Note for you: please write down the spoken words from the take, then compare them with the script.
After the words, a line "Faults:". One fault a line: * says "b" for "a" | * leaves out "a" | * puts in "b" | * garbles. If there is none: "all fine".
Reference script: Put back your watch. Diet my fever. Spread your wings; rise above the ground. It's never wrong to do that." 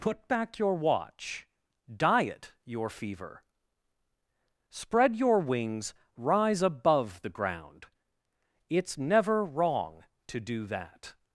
Put back your watch. Diet your fever. Spread your wings; rise above the ground. It's never wrong to do that."
Faults:
* says "your" for "my"